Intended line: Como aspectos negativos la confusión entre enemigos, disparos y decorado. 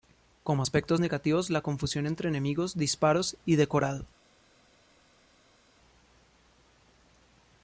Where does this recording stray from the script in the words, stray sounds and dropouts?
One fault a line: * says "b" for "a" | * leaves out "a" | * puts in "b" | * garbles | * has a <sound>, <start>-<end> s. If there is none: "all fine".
all fine